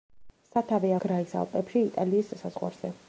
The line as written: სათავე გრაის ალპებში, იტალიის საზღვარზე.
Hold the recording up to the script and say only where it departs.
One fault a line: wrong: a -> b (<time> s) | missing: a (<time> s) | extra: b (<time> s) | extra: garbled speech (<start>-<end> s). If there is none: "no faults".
no faults